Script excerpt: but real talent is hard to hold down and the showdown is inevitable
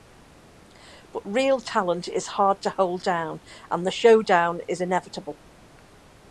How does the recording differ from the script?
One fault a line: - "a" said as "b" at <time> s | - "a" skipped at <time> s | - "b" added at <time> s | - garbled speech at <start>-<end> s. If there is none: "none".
none